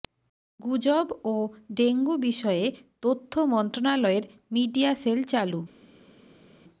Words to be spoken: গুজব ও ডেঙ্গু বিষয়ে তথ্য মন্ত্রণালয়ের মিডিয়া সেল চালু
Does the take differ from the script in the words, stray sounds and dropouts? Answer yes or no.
no